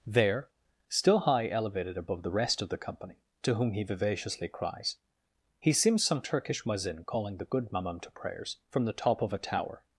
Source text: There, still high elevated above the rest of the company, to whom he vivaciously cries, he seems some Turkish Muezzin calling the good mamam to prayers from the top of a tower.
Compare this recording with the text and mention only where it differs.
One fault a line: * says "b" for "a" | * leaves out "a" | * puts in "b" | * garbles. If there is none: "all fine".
all fine